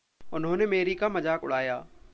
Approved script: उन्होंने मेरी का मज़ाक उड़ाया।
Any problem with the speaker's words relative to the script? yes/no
no